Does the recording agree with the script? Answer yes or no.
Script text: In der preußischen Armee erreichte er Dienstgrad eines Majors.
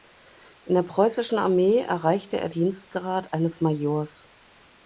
yes